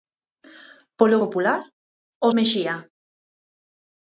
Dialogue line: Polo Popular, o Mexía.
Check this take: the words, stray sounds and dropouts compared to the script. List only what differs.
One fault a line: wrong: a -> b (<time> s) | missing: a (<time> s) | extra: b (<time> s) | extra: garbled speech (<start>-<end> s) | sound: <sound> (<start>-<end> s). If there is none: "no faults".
no faults